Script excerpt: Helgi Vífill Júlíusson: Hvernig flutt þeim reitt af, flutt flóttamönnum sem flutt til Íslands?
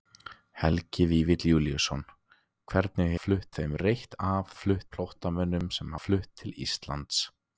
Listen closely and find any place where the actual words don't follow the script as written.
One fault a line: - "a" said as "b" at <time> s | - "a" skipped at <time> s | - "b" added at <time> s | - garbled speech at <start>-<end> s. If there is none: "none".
none